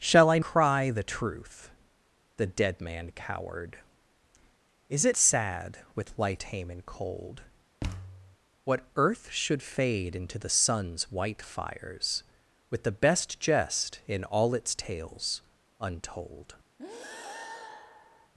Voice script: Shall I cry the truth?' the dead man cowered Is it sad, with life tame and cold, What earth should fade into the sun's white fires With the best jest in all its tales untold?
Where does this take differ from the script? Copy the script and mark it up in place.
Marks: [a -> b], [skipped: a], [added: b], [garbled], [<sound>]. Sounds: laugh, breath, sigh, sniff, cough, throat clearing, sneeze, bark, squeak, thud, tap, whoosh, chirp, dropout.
Shall I cry the truth?' the dead man cowered Is it sad, with life tame and cold, [thud] What earth should fade into the sun's white fires With the best jest in all its tales untold? [breath]